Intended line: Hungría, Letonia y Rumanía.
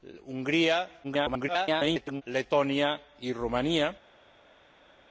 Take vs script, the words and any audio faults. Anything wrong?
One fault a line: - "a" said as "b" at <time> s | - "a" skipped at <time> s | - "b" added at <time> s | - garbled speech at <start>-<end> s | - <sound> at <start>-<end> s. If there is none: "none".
- garbled speech at 1.0-2.2 s